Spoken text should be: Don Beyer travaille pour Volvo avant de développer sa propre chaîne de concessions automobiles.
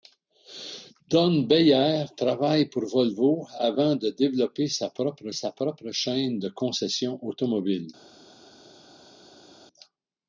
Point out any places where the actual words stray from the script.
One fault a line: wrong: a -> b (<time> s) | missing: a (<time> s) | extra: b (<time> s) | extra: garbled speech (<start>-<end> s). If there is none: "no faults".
extra: sa propre (5.3 s)